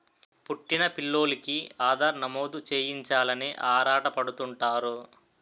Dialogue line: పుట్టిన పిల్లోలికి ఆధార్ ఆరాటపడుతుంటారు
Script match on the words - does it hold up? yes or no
no